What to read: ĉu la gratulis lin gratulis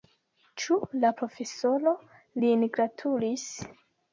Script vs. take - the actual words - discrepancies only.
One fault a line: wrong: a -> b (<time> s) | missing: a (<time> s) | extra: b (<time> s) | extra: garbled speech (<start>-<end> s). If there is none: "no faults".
wrong: gratulis -> profesoro (1.2 s)